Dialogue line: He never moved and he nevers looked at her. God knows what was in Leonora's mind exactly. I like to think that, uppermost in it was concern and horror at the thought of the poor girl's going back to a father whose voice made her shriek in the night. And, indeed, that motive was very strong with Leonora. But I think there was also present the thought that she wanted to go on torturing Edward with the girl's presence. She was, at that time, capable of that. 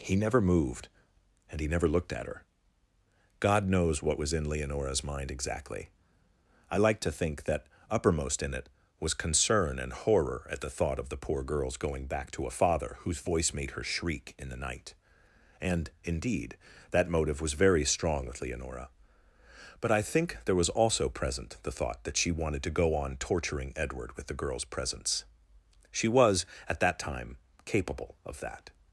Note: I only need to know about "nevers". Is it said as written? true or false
false